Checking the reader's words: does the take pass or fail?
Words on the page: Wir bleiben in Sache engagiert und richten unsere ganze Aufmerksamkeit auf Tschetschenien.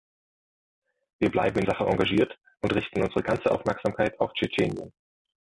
pass